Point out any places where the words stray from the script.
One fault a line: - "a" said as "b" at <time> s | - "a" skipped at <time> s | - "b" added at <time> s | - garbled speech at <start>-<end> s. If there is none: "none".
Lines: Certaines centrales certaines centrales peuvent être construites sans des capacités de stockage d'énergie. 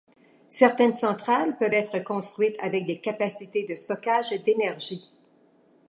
- "certaines centrales" skipped at 1.6 s
- "sans" said as "avec" at 2.6 s